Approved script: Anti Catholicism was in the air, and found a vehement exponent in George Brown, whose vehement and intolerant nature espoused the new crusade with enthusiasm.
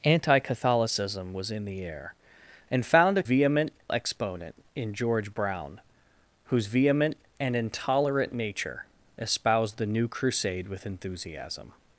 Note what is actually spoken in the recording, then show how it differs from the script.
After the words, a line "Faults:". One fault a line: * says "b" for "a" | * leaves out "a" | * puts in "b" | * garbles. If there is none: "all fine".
Anti Catholicism was in the air, and found a vehement exponent in George Brown, whose vehement and intolerant nature espoused the new crusade with enthusiasm.
Faults:
all fine